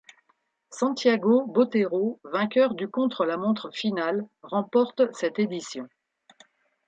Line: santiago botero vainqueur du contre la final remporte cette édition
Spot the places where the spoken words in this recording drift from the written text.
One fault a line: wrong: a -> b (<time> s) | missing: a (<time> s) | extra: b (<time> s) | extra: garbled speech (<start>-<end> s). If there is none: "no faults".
extra: montre (3.4 s)